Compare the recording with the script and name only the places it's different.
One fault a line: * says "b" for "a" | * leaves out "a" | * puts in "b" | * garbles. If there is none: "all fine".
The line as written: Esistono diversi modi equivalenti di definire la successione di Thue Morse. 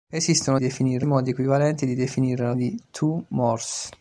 * says "definire" for "diversi"
* leaves out "successione"